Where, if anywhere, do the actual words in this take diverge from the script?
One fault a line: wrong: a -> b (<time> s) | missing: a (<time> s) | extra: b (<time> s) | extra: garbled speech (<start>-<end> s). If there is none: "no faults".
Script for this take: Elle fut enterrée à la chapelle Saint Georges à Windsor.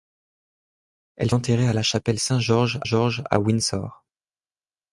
missing: fut (1.3 s)
extra: Georges (2.8 s)